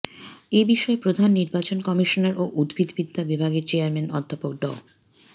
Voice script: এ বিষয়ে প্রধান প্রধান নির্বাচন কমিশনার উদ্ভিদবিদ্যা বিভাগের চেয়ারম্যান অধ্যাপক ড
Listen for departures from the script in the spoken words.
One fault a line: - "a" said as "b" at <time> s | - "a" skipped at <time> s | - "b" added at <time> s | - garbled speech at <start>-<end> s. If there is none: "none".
- "প্রধান" skipped at 1.3 s
- "ও" added at 2.4 s